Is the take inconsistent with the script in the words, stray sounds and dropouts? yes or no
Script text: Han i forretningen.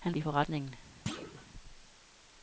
yes